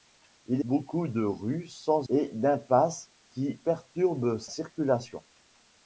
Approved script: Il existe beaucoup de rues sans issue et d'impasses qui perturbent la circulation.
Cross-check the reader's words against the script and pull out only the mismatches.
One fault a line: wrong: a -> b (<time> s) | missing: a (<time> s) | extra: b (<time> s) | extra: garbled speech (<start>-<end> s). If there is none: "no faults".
missing: existe (0.6 s)
missing: issue (2.1 s)
missing: la (4.4 s)